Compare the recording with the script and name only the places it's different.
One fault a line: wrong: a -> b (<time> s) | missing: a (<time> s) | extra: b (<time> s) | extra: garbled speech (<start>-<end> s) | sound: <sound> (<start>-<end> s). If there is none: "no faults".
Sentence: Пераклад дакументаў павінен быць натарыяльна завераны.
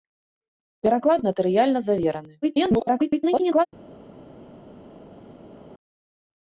missing: дакументаў павінен быць (1.2 s)
extra: garbled speech (2.4-3.7 s)